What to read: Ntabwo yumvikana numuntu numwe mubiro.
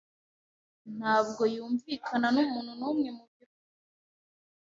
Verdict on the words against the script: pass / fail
pass